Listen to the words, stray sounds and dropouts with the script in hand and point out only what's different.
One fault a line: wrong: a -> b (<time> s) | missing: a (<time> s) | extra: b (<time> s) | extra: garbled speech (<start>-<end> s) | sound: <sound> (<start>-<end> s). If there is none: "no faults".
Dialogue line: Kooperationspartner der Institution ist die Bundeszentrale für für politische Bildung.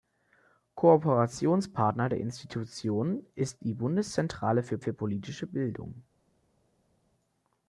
no faults